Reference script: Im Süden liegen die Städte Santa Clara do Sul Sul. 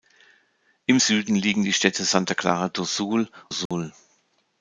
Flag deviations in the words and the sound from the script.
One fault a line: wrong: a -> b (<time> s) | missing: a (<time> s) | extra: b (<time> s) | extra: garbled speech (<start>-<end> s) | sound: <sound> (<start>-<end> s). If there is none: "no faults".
sound: dropout (3.7-3.7 s)